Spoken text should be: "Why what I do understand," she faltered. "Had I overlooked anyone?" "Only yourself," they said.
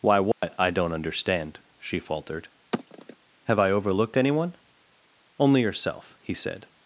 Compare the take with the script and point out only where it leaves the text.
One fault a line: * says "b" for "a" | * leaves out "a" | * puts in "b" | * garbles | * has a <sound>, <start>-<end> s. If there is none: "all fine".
* has a dropout, 0.3-0.4 s
* says "don't" for "do"
* has a sigh, 2.7-3.2 s
* says "Have" for "Had"
* says "he" for "they"